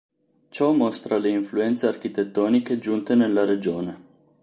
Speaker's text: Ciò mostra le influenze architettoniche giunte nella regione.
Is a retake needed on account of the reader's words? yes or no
no